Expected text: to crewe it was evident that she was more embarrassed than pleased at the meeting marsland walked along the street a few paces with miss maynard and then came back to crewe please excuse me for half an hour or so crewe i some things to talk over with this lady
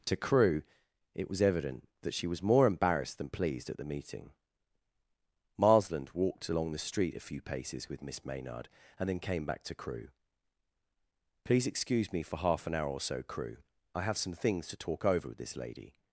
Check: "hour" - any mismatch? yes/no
no